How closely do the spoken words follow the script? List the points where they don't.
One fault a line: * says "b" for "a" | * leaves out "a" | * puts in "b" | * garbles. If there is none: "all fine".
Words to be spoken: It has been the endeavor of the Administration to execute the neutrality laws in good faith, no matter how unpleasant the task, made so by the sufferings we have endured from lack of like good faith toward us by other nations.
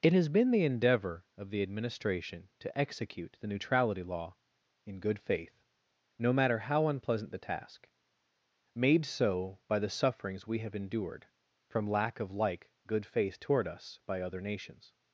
* says "law" for "laws"